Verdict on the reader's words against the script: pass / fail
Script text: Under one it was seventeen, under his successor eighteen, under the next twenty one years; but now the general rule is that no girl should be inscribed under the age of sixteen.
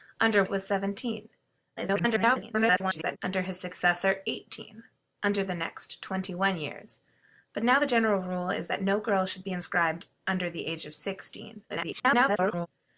fail